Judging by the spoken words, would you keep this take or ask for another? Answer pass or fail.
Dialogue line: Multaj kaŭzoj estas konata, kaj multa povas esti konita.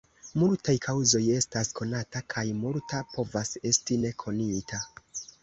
fail